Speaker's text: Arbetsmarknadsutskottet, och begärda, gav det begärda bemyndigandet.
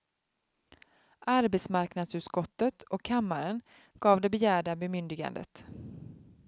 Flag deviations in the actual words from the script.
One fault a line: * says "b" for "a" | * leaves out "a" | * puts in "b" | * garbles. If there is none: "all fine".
* says "kammaren" for "begärda"